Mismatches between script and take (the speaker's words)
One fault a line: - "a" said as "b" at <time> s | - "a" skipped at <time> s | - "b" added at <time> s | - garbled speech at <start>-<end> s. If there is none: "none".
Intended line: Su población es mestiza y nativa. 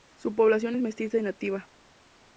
none